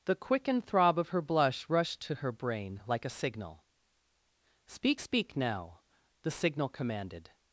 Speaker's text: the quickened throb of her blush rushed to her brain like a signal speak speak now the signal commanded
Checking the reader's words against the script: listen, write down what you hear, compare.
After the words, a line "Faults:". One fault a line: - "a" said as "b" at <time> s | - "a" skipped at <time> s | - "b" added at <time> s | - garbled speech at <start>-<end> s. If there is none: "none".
the quickened throb of her blush rushed to her brain like a signal speak speak now the signal commanded
Faults:
none